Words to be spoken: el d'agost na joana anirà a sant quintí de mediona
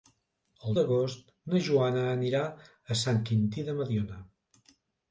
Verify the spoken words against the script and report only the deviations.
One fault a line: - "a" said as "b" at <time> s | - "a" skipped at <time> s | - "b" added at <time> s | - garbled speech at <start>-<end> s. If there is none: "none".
none